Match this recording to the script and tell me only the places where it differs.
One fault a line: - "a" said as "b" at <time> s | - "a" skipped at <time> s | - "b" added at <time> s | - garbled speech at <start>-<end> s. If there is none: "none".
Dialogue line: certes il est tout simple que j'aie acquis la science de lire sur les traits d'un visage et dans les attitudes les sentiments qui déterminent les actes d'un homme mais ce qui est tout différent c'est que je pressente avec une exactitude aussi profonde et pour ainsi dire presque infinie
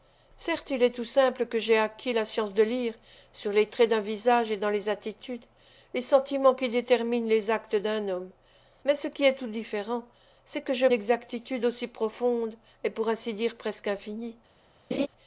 - "pressente avec une" skipped at 10.9 s